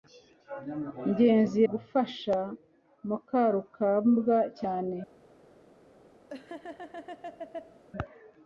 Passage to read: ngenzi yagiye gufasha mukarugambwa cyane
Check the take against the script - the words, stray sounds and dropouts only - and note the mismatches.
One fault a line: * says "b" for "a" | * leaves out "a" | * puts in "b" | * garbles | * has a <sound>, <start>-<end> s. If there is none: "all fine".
* leaves out "yagiye"
* has a laugh, 6.3-7.8 s